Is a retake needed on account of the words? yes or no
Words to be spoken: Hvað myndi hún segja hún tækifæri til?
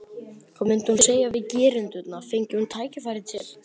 yes